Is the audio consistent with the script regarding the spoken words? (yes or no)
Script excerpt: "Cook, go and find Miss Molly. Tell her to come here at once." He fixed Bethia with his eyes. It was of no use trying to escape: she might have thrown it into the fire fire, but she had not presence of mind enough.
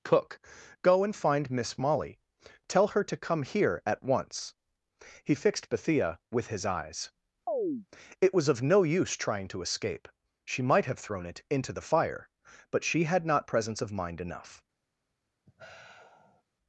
no